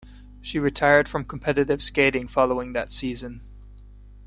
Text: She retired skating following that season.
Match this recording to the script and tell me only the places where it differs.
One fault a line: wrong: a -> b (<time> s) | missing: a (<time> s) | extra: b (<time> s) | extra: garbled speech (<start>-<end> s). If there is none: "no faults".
extra: from competitive (1.1 s)